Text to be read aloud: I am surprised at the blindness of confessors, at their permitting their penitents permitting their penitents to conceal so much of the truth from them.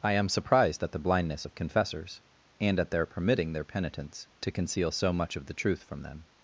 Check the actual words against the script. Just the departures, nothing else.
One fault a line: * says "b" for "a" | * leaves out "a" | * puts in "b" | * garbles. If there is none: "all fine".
* puts in "and"
* leaves out "permitting their penitents"